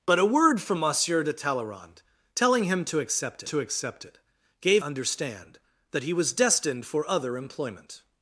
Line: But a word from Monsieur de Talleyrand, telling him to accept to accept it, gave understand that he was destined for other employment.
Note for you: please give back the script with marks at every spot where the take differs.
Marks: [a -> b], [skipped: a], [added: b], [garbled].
But a word from Monsieur de Talleyrand, telling him to accept to accept it, gave understand that he was destined for other employment.